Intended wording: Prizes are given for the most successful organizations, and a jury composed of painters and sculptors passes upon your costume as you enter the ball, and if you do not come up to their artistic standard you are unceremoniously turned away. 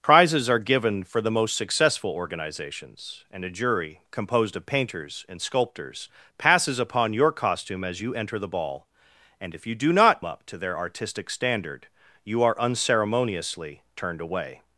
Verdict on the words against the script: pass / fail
fail